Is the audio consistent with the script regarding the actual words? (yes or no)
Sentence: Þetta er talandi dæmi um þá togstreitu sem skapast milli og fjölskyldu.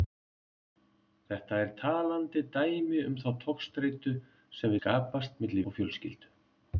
yes